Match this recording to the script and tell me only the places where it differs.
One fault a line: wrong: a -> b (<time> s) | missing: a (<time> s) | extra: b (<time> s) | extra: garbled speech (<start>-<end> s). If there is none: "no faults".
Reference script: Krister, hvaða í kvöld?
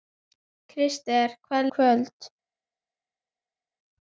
no faults